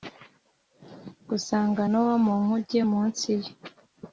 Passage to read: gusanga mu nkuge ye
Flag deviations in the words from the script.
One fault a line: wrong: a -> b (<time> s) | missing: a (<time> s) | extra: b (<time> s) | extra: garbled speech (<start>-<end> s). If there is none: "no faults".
extra: nowa (1.9 s)
extra: munsi (2.9 s)